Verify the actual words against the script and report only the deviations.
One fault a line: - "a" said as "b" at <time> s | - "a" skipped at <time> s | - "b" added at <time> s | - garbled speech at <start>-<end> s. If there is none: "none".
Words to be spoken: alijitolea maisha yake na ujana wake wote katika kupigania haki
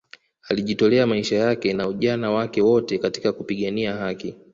none